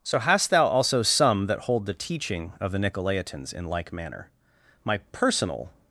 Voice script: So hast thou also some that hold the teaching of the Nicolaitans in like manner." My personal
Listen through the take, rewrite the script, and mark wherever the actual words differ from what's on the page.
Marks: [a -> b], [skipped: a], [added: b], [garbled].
So hast thou also some that hold the teaching of the Nicolaitans in like manner." My personal